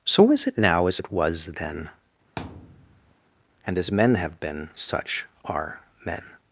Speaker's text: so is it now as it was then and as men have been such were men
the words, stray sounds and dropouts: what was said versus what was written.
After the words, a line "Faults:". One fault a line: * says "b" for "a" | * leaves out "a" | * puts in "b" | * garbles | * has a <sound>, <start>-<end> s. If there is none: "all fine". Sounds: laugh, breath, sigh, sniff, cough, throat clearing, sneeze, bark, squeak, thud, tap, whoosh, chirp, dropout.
so is it now as it was then and as men have been such are men
Faults:
* has a thud, 2.4-3.2 s
* says "are" for "were"